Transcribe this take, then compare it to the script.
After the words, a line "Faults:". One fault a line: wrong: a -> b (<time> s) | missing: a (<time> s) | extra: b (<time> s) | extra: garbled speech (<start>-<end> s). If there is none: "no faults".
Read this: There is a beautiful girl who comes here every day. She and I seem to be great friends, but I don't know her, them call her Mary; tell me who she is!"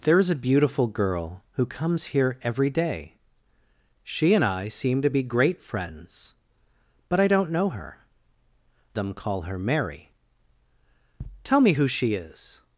There is a beautiful girl who comes here every day. She and I seem to be great friends, but I don't know her, them call her Mary; tell me who she is!"
Faults:
no faults